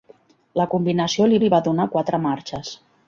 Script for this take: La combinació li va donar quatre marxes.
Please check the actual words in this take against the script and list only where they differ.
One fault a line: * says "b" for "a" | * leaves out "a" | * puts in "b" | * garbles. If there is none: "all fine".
* puts in "li"